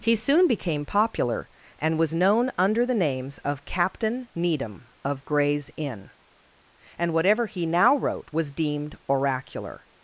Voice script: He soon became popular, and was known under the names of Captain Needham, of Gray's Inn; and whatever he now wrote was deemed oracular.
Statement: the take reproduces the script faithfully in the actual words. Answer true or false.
true